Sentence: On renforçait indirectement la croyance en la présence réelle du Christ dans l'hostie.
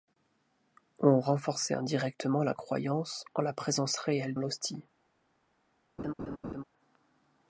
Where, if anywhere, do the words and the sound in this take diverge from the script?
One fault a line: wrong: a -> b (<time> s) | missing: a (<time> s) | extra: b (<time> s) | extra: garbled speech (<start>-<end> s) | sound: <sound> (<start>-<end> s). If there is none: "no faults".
missing: du Christ dans (4.3 s)
sound: laugh (6.0-6.6 s)